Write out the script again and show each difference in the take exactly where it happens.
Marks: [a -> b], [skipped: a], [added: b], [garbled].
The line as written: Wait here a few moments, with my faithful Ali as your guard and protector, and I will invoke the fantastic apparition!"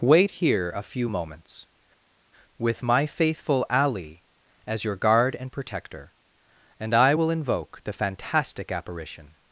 Wait here a few moments, with my faithful Ali as your guard and protector, and I will invoke the fantastic apparition!"